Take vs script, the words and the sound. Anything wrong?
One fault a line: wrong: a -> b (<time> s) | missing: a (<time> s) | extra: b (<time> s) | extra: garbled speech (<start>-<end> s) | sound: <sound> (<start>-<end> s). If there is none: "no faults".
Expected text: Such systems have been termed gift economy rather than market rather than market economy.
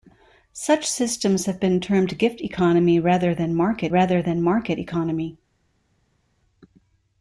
no faults